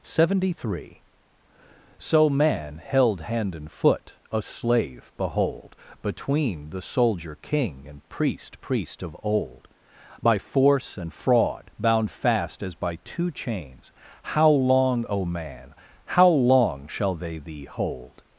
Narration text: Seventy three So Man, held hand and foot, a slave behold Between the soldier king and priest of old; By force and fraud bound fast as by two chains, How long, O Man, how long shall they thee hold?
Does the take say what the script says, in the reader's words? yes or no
no